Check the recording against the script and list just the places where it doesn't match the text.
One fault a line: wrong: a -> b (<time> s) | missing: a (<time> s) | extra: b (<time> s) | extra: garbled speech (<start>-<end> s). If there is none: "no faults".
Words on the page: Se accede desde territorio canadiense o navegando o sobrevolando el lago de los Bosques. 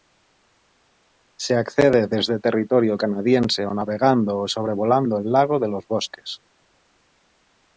no faults